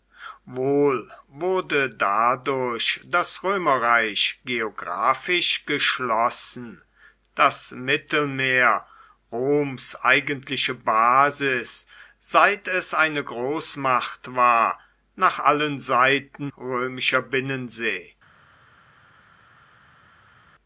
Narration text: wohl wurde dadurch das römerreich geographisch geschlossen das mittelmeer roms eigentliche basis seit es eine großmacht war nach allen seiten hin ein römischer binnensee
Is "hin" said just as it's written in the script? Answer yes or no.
no